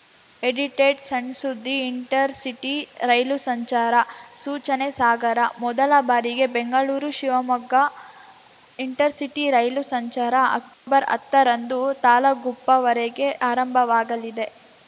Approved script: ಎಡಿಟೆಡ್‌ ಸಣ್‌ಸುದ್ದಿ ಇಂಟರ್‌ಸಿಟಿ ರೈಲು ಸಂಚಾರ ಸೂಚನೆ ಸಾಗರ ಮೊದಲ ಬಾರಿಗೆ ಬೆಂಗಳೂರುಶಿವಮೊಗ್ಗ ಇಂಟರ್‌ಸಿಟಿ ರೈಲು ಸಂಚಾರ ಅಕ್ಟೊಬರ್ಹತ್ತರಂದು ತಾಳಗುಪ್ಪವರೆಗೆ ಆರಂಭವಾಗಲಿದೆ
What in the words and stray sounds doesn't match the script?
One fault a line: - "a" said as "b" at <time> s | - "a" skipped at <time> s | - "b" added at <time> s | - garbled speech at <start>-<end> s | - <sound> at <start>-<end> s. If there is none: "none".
- dropout at 10.7-10.9 s